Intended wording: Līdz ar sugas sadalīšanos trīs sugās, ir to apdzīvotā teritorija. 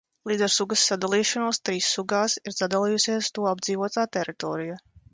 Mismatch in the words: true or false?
true